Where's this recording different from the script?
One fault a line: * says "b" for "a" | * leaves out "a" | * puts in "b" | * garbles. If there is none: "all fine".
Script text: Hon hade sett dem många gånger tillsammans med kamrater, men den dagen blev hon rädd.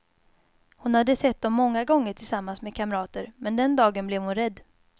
all fine